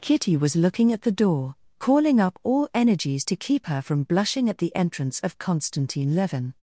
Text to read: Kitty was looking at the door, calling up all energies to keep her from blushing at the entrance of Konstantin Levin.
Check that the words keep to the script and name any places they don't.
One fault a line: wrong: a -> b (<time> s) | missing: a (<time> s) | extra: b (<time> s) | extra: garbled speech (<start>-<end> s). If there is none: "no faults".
no faults